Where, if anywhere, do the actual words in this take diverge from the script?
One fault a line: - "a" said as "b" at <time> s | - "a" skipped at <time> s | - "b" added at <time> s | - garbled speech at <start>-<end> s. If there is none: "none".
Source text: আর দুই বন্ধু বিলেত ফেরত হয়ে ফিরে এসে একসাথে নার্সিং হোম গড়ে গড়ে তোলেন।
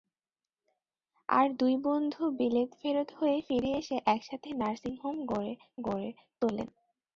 none